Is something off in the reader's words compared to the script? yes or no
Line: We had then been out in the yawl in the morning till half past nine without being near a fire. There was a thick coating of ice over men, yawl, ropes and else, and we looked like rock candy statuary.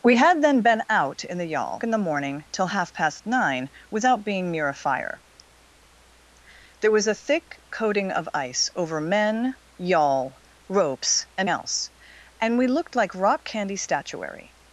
no